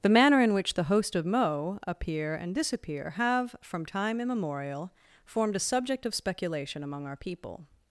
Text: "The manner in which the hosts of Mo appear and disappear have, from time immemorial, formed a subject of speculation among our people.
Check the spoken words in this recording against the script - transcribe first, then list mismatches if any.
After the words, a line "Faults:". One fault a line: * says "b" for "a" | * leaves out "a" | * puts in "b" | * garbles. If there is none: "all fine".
"The manner in which the host of Mo appear and disappear have, from time immemorial, formed a subject of speculation among our people.
Faults:
* says "host" for "hosts"